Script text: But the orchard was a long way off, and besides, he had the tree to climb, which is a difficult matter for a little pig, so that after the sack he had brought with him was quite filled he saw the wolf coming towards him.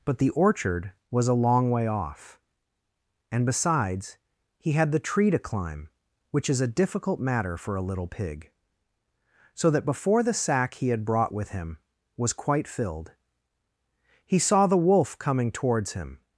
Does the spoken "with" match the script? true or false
true